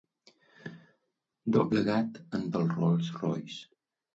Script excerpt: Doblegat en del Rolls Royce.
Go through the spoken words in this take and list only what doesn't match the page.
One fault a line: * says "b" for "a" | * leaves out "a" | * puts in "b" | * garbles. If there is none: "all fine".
all fine